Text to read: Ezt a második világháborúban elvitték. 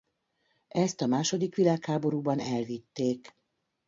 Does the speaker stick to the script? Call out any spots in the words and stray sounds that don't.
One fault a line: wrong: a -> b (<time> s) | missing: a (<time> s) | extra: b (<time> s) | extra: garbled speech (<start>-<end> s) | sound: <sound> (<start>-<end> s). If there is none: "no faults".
no faults